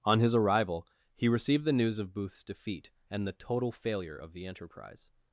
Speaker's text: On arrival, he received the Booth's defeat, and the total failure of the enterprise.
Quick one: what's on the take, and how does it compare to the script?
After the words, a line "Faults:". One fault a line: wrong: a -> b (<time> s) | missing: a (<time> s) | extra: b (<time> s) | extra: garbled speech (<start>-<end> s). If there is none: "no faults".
On his arrival, he received the news of Booth's defeat, and the total failure of the enterprise.
Faults:
extra: his (0.2 s)
extra: news of (1.7 s)